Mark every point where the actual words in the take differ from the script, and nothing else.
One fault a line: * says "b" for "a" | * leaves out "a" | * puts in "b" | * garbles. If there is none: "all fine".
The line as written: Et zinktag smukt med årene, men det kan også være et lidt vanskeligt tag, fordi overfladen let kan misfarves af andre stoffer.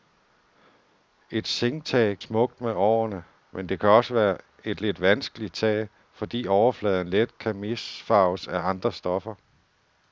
all fine